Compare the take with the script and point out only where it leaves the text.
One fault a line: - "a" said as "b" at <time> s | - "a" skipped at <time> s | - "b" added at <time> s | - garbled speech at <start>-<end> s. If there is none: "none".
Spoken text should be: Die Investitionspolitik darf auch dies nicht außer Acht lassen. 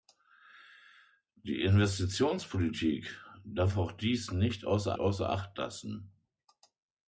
- "außer" added at 5.0 s